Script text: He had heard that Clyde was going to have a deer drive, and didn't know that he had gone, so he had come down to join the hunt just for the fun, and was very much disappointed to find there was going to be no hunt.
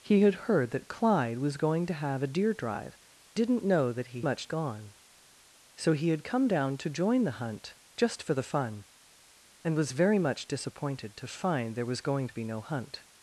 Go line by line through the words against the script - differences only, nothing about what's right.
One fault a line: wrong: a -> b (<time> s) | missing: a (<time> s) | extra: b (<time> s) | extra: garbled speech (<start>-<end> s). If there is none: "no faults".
missing: and (3.0 s)
wrong: had -> much (4.2 s)